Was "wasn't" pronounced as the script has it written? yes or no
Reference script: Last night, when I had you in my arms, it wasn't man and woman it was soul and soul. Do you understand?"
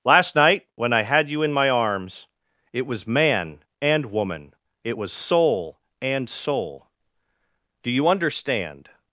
no